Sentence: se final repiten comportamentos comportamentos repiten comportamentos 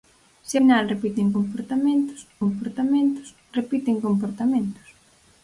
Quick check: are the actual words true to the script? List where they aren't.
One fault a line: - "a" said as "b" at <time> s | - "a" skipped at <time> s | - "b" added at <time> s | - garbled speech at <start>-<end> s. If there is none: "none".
none